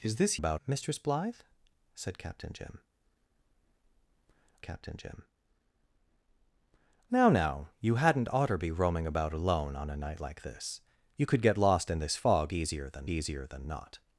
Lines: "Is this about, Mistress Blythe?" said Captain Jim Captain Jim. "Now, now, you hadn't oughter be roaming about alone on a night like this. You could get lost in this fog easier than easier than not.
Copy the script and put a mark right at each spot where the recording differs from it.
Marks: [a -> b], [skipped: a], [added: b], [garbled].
"Is this about, Mistress Blythe?" said Captain Jim Captain Jim. "Now, now, you hadn't oughter be roaming about alone on a night like this. You could get lost in this fog easier than easier than not.